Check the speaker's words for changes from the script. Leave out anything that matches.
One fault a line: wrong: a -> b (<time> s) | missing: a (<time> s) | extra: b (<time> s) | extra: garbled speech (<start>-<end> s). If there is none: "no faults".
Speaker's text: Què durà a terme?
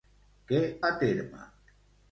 missing: durà (0.6 s)